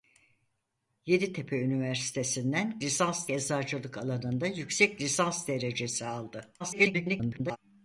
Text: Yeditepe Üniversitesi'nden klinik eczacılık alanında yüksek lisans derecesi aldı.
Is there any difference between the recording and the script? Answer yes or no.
yes